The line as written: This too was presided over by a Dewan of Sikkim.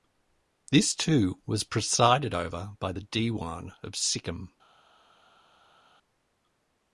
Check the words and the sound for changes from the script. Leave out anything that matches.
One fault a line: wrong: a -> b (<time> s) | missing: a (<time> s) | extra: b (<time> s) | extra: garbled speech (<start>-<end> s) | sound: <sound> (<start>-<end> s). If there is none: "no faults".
wrong: a -> the (2.9 s)